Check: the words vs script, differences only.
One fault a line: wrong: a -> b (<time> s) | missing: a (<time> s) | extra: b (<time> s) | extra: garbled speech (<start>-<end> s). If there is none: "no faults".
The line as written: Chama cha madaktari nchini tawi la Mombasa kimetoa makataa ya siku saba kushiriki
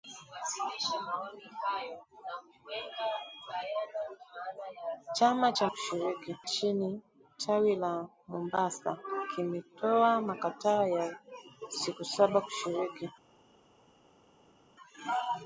wrong: madaktari -> kushiriki (5.7 s)